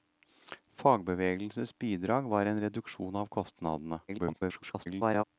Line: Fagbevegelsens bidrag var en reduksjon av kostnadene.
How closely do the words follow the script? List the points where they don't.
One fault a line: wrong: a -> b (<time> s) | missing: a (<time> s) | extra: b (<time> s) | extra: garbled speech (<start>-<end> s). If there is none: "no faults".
extra: garbled speech (4.1-5.2 s)